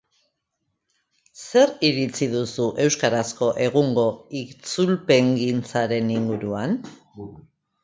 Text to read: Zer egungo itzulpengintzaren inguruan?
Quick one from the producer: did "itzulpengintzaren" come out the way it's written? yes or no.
yes